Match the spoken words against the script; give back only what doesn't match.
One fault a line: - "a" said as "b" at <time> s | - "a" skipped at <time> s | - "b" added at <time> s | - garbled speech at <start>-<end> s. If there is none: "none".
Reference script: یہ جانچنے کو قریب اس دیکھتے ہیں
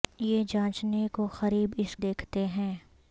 none